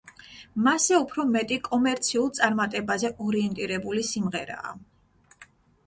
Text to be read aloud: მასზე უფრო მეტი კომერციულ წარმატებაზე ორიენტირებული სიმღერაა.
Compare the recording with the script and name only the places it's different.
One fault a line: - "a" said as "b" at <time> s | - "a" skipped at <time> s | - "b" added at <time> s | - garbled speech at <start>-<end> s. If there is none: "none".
none